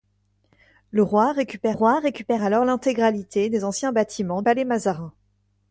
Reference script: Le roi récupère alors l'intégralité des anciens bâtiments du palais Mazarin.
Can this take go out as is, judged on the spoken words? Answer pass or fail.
fail